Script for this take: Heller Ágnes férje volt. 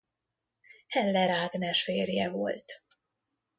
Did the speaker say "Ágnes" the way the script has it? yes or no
yes